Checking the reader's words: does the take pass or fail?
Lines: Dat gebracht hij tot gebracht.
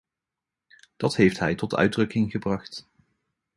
fail